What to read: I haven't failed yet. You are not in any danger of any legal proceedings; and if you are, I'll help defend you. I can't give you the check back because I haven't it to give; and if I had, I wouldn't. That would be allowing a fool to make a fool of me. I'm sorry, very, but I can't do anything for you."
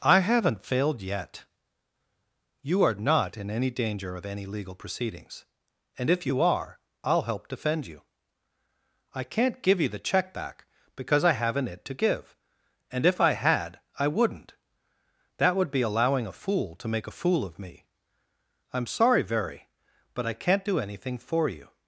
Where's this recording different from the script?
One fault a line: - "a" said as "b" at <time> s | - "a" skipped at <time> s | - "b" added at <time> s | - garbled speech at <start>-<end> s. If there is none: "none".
none